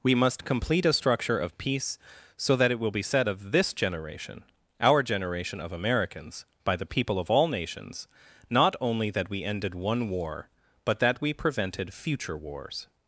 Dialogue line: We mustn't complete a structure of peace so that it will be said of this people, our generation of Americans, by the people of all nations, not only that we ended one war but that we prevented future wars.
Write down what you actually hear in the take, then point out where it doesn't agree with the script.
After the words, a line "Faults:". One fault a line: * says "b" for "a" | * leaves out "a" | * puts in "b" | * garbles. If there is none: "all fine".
We must complete a structure of peace so that it will be said of this generation, our generation of Americans, by the people of all nations, not only that we ended one war but that we prevented future wars.
Faults:
* says "must" for "mustn't"
* says "generation" for "people"